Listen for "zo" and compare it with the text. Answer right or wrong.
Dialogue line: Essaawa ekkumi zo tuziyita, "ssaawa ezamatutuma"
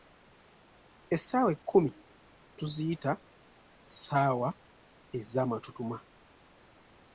wrong